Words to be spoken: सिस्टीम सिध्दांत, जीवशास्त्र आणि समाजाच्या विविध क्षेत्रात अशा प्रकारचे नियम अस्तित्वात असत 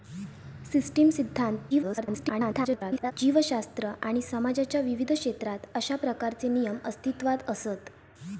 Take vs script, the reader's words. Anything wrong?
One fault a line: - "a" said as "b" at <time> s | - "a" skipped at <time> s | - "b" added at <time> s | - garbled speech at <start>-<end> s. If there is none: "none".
- garbled speech at 1.7-3.1 s